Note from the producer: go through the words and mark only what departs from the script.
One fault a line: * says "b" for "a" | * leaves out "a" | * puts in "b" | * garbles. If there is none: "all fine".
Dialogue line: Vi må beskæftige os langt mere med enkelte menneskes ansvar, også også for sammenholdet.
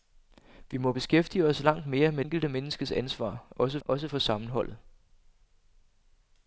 all fine